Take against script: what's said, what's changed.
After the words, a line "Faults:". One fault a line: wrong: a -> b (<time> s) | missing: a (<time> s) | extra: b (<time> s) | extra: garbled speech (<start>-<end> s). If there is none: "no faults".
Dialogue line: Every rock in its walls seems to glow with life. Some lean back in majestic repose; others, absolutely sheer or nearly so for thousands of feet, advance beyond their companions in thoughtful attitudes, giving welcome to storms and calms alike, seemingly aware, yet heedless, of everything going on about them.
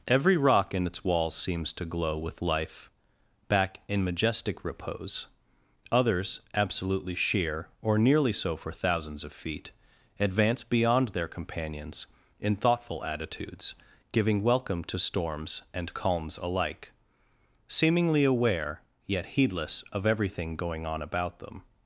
Every rock in its walls seems to glow with life. back in majestic repose; others, absolutely sheer or nearly so for thousands of feet, advance beyond their companions in thoughtful attitudes, giving welcome to storms and calms alike, seemingly aware, yet heedless, of everything going on about them.
Faults:
missing: Some lean (2.9 s)